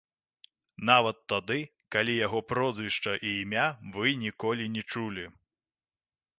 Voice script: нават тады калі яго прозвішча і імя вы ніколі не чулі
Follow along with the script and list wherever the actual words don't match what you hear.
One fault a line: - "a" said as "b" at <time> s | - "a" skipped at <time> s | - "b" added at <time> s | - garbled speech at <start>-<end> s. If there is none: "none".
none